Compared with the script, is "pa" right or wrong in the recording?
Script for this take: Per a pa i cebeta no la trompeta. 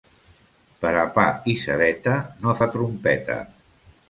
right